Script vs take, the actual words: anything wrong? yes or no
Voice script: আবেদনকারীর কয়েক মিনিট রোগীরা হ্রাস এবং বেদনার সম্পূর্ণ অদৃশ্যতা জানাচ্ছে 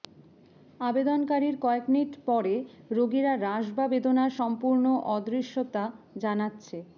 yes